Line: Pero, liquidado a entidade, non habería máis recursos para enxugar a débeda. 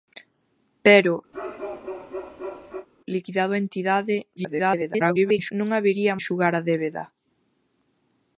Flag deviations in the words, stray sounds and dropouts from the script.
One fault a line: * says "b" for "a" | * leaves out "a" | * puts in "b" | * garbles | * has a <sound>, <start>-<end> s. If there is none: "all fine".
* has a bark, 1.3-2.9 s
* garbles
* leaves out "máis recursos para"